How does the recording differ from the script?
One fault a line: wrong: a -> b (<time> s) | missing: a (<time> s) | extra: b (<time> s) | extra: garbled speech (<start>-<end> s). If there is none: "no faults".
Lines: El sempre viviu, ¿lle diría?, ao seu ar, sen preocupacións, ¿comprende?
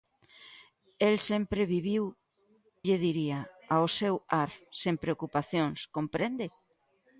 no faults